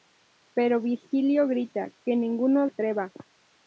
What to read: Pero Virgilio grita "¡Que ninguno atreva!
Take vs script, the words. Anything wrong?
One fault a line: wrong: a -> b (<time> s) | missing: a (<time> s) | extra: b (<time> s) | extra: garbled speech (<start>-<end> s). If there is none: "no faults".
no faults